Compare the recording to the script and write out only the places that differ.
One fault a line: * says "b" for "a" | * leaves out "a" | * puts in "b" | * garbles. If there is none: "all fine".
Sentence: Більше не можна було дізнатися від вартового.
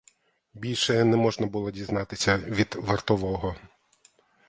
all fine